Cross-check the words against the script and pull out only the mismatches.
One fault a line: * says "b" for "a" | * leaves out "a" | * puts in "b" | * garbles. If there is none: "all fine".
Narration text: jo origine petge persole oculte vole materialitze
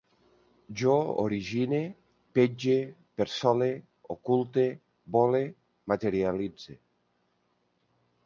all fine